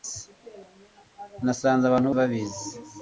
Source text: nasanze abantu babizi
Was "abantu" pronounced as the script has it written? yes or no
yes